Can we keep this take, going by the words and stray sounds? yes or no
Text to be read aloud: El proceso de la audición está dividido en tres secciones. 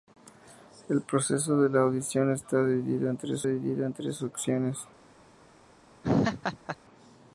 no